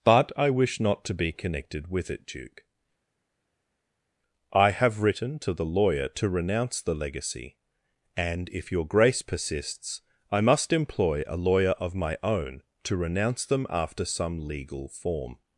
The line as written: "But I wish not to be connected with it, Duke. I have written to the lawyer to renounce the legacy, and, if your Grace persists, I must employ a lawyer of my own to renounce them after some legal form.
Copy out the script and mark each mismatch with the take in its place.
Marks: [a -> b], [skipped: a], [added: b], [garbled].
"But I wish not to be connected with it, Duke. I have written to the lawyer to renounce the legacy, and, if your Grace persists, I must employ a lawyer of my own to renounce them after some legal form.